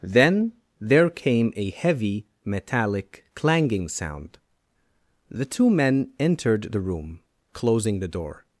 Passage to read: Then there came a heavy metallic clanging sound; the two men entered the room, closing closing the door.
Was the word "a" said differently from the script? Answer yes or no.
no